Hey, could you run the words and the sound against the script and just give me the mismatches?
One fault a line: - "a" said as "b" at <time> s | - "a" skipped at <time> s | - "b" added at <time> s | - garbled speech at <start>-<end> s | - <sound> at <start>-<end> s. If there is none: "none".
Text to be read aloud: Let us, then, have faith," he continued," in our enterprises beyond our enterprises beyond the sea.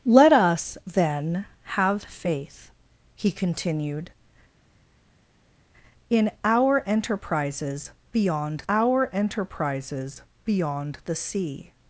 none